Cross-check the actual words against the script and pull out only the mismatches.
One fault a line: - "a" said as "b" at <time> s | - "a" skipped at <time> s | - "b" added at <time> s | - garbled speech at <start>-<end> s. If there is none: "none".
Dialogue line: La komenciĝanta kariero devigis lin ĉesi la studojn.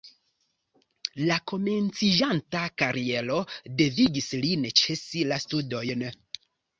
none